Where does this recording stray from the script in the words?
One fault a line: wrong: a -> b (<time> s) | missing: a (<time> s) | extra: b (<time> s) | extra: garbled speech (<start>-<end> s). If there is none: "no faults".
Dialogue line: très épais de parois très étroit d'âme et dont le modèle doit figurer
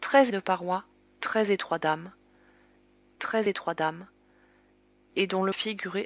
missing: épais (0.3 s)
extra: très étroit d'âme (3.2 s)
missing: modèle doit (5.5 s)